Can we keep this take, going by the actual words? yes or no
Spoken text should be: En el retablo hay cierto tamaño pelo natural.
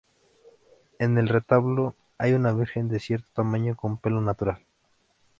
no